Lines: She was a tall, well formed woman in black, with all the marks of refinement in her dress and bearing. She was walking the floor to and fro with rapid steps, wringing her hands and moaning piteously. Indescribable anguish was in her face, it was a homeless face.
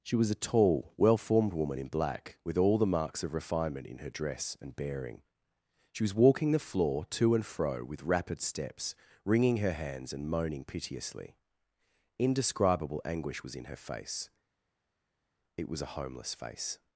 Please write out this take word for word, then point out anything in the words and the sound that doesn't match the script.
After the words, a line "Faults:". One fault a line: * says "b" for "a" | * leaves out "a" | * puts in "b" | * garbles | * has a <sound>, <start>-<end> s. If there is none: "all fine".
She was a tall, well formed woman in black, with all the marks of refinement in her dress and bearing. She was walking the floor to and fro with rapid steps, wringing her hands and moaning piteously. Indescribable anguish was in her face, it was a homeless face.
Faults:
all fine